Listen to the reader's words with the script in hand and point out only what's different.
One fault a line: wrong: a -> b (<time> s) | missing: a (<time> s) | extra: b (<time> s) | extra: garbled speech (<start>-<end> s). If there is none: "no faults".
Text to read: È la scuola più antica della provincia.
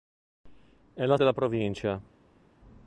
missing: scuola più antica (1.2 s)